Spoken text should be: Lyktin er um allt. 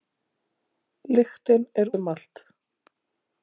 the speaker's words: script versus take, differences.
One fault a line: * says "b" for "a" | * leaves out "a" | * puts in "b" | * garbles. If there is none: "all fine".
all fine